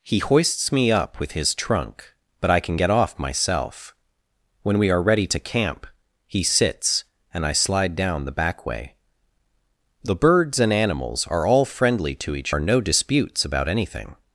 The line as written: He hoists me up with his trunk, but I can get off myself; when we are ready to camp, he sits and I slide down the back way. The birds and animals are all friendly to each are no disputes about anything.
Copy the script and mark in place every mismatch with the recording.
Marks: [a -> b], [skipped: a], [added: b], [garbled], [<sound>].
He hoists me up with his trunk, but I can get off myself; when we are ready to camp, he sits and I slide down the back way. The birds and animals are all friendly to each are no disputes about anything.